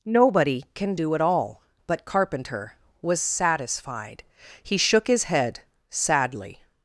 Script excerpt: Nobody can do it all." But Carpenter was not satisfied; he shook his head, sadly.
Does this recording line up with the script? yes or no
no